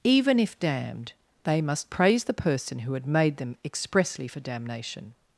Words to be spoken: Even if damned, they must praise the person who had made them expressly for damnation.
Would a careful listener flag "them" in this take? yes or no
no